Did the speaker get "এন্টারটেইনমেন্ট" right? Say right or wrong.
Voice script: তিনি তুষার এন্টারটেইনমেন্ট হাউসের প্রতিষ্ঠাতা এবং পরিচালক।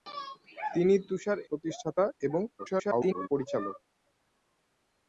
wrong